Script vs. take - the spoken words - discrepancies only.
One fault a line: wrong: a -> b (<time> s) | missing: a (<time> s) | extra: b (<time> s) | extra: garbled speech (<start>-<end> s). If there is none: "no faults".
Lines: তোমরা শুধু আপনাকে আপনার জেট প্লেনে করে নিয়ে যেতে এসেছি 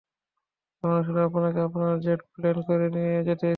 wrong: তোমরা -> আমরা (0.8 s)